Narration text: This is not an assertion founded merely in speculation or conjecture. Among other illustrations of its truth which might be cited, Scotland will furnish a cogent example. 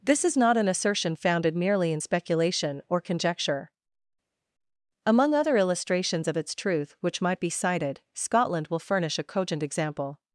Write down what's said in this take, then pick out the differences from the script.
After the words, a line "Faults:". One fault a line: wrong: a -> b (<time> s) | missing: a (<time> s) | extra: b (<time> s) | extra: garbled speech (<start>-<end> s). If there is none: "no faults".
This is not an assertion founded merely in speculation or conjecture. Among other illustrations of its truth which might be cited, Scotland will furnish a cogent example.
Faults:
no faults